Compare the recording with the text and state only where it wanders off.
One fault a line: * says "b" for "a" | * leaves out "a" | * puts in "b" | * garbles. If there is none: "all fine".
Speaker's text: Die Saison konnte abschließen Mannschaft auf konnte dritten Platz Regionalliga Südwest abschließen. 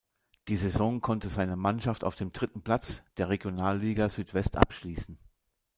* says "seine" for "abschließen"
* says "dem" for "konnte"
* puts in "der"